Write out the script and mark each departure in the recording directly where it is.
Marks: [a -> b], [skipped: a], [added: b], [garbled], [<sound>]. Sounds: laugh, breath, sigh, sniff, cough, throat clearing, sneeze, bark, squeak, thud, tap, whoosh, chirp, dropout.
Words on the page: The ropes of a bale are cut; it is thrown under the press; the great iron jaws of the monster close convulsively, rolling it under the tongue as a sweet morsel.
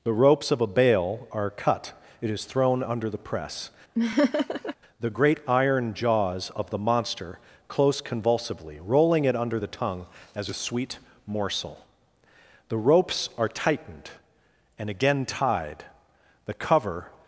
The ropes of a bale are cut; it is thrown under the press; [laugh] the great iron jaws of the monster close convulsively, rolling it under the tongue as a sweet morsel. [added: The ropes are tightened and again tied the cover]